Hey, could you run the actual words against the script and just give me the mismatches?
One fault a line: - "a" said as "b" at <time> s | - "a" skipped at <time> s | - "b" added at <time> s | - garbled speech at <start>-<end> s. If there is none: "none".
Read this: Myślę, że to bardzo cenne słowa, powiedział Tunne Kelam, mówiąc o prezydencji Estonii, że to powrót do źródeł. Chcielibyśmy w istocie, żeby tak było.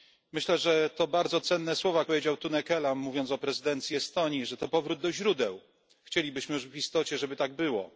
none